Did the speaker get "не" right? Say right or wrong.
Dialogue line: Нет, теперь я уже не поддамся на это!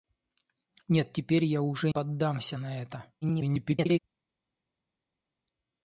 wrong